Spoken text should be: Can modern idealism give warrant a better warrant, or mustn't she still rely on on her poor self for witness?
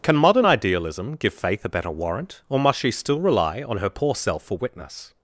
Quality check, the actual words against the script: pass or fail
fail